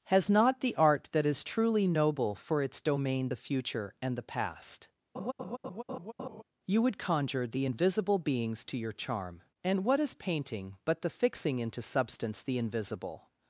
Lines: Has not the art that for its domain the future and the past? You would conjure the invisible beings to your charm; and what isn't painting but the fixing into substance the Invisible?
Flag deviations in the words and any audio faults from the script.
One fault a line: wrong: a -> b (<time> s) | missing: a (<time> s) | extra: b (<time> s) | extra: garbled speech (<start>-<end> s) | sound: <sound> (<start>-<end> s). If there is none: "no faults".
extra: is truly noble (1.3 s)
sound: laugh (5.1-6.4 s)
wrong: isn't -> is (10.0 s)